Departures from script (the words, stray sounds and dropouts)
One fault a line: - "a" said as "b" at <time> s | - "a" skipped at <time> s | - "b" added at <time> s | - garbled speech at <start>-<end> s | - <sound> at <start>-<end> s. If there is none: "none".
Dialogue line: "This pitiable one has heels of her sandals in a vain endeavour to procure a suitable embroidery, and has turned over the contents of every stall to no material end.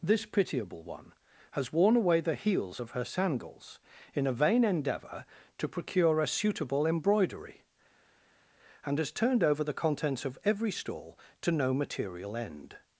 - "worn away the" added at 1.7 s